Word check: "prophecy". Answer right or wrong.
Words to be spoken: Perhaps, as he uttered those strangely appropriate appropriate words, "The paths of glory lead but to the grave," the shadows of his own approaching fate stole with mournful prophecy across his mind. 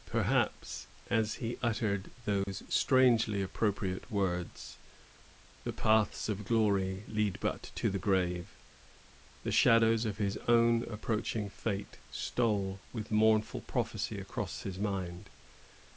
right